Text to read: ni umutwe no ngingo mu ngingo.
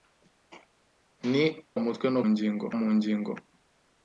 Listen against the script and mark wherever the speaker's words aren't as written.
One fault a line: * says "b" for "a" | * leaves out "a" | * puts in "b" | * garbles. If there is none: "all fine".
all fine